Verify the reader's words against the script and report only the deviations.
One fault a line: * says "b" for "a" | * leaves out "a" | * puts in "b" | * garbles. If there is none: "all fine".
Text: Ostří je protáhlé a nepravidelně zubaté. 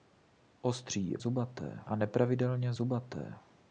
* says "zubaté" for "protáhlé"